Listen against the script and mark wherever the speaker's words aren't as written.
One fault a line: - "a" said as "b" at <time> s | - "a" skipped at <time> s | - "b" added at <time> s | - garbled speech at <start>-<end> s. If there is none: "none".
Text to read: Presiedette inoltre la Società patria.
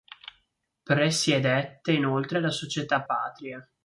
none